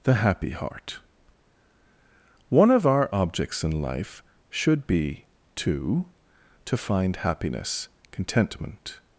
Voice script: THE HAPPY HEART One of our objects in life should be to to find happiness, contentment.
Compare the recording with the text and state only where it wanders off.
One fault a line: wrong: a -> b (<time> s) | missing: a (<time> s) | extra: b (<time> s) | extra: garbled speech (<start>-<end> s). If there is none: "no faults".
no faults